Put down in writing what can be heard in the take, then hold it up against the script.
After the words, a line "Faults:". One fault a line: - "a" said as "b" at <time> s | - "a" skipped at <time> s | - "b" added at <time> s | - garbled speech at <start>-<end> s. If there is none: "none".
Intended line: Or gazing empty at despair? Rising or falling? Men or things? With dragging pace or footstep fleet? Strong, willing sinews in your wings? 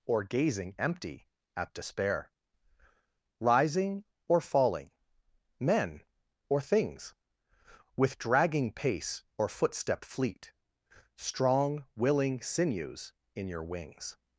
Or gazing empty at despair? Rising or falling? Men or things? With dragging pace or footstep fleet? Strong, willing sinews in your wings?
Faults:
none